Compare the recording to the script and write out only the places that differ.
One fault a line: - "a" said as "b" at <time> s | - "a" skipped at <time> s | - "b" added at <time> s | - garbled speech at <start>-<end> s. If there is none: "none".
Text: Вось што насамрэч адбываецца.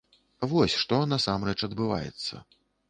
none